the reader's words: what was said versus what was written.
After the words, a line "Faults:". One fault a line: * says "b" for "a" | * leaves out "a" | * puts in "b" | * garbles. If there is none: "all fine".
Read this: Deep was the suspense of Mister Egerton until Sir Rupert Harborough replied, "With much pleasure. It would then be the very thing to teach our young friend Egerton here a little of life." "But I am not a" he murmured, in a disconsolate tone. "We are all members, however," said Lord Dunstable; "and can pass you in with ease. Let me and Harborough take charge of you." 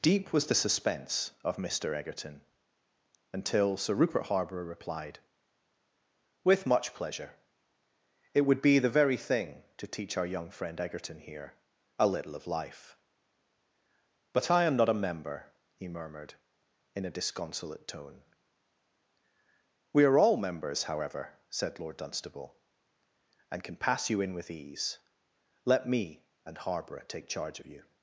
Deep was the suspense of Mister Egerton until Sir Rupert Harborough replied, "With much pleasure. It would be the very thing to teach our young friend Egerton here a little of life." "But I am not a member" he murmured, in a disconsolate tone. "We are all members, however," said Lord Dunstable; "and can pass you in with ease. Let me and Harborough take charge of you."
Faults:
* leaves out "then"
* puts in "member"